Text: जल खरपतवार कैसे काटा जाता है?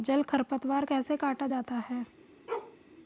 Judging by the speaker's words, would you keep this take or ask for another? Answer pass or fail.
pass